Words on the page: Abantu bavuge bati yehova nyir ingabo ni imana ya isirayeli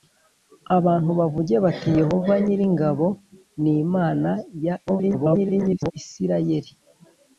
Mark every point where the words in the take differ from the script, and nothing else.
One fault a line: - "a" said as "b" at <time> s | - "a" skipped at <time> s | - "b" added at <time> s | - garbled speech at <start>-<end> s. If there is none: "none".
- garbled speech at 4.9-5.9 s